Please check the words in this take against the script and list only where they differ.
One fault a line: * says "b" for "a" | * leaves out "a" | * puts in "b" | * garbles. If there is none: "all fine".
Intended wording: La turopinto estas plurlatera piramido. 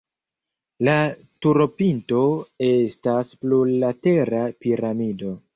all fine